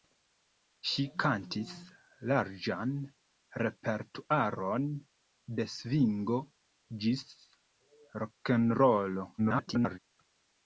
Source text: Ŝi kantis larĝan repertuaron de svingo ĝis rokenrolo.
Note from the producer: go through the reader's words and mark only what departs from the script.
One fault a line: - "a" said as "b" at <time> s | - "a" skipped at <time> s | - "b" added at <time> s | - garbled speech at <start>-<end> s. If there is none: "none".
- garbled speech at 9.4-10.0 s